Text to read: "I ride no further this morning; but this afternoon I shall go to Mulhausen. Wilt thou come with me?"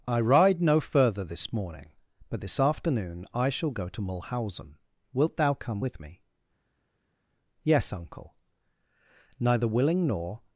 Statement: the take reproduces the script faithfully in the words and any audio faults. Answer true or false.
false